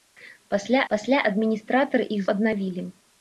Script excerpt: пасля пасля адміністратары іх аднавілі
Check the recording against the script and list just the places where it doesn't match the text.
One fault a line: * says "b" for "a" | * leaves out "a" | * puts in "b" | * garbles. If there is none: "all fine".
all fine